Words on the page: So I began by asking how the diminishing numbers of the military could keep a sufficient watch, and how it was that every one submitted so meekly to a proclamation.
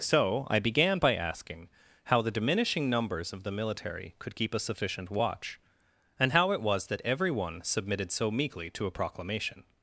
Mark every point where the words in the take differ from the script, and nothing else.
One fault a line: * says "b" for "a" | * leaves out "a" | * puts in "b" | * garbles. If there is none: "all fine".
all fine